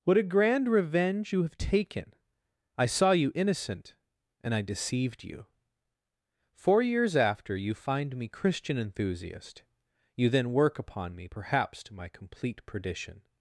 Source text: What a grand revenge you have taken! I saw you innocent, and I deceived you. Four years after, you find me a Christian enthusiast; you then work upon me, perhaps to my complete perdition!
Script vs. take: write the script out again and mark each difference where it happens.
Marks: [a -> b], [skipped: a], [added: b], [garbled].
What a grand revenge you have taken! I saw you innocent, and I deceived you. Four years after, you find me [skipped: a] Christian enthusiast; you then work upon me, perhaps to my complete perdition!